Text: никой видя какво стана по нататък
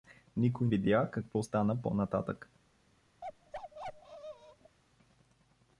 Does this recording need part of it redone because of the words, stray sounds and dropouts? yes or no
yes